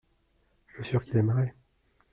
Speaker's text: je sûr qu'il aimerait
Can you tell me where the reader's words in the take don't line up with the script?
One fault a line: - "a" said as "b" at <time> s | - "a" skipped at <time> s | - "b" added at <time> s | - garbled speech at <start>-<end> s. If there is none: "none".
none